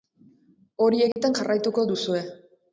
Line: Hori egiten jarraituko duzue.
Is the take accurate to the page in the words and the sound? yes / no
no